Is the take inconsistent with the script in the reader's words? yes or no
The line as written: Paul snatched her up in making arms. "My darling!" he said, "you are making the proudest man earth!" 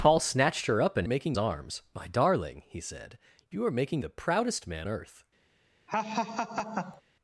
no